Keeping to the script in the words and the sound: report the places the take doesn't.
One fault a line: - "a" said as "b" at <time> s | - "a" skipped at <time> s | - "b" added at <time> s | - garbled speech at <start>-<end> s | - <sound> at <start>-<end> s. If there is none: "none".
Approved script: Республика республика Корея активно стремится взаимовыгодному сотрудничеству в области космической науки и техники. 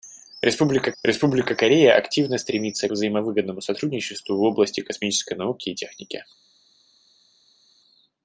none